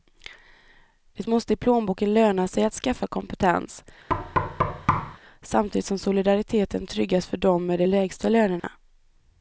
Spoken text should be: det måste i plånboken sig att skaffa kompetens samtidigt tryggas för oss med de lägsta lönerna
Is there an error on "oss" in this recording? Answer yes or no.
yes